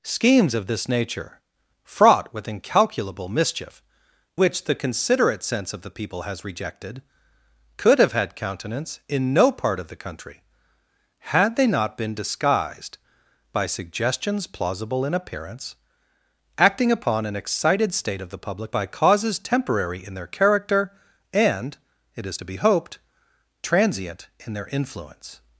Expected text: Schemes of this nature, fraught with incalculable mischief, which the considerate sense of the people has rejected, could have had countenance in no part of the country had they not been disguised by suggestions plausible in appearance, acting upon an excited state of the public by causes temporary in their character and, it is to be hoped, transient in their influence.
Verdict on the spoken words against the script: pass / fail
pass